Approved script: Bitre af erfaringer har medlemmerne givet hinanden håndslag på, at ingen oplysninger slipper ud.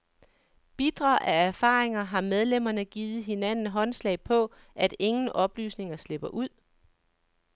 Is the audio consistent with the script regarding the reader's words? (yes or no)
yes